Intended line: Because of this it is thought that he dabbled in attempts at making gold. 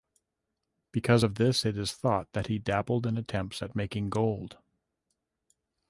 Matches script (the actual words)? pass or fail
pass